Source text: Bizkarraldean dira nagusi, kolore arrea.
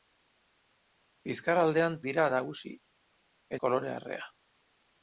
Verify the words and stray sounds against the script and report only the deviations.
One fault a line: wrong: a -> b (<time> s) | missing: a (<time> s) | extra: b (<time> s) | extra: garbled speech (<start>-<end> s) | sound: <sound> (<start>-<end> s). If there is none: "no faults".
no faults